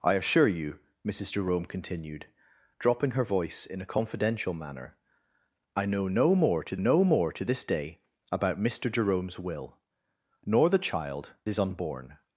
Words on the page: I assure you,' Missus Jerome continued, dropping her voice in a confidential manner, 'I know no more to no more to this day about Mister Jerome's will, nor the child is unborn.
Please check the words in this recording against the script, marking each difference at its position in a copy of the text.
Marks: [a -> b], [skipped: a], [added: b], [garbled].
I assure you,' Missus Jerome continued, dropping her voice in a confidential manner, 'I know no more to no more to this day about Mister Jerome's will, nor the child is unborn.